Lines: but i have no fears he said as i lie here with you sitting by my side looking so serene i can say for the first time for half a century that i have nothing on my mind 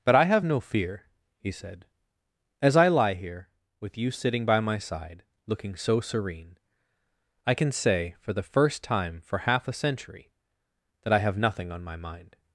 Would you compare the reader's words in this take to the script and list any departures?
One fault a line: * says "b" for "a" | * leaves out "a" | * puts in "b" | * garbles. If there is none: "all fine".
* says "fear" for "fears"